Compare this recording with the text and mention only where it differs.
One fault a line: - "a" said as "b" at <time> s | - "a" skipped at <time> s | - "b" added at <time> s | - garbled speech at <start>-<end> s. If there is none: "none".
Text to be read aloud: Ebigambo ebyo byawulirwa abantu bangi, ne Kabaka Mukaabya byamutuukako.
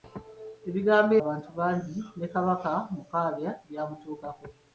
- "ebyo byawulirwa" skipped at 1.1 s